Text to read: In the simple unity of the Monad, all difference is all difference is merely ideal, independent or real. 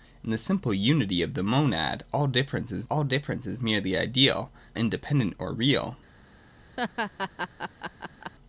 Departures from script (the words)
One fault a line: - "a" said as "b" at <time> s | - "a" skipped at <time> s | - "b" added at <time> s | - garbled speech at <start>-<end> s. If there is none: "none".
none